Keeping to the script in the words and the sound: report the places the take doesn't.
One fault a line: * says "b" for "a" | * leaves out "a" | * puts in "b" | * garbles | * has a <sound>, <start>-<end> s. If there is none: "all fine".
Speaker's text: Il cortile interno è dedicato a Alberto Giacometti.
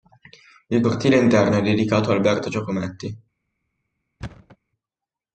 * has a thud, 4.2-4.6 s